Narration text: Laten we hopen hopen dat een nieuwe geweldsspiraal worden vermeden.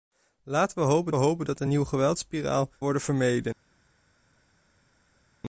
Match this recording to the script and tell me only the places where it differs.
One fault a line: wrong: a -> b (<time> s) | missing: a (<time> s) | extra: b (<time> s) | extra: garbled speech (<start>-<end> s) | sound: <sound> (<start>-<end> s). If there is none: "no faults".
no faults